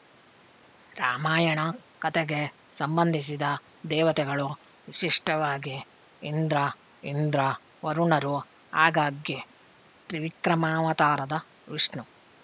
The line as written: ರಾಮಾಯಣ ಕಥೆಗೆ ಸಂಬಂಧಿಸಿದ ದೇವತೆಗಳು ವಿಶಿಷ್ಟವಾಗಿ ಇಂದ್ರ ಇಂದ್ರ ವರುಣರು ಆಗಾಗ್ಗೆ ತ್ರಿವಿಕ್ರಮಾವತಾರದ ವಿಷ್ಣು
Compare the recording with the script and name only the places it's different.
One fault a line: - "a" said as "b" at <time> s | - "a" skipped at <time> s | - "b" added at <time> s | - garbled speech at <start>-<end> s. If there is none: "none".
none